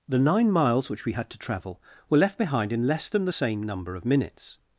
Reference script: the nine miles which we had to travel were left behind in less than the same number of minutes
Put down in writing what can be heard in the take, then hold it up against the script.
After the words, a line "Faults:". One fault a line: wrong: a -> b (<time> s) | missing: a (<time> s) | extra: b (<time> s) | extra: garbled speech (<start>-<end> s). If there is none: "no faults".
the nine miles which we had to travel were left behind in less than the same number of minutes
Faults:
no faults